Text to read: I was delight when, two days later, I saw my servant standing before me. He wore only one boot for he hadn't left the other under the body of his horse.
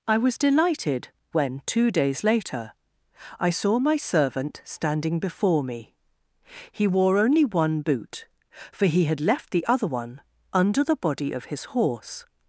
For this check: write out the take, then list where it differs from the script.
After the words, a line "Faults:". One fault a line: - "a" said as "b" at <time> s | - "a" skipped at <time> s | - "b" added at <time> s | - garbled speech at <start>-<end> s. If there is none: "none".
I was delighted when, two days later, I saw my servant standing before me. He wore only one boot for he had left the other one under the body of his horse.
Faults:
- "delight" said as "delighted" at 0.4 s
- "hadn't" said as "had" at 9.0 s
- "one" added at 9.9 s